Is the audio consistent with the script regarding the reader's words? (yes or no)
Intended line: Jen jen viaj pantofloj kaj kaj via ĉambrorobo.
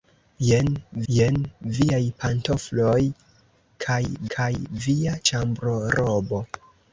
yes